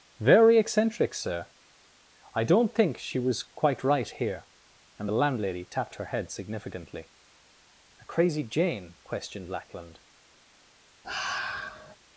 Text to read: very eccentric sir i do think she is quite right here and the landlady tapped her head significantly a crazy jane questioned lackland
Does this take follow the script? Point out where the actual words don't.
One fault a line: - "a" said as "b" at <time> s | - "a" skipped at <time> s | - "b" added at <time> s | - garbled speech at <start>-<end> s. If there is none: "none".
- "do" said as "don't" at 2.4 s
- "is" said as "was" at 3.2 s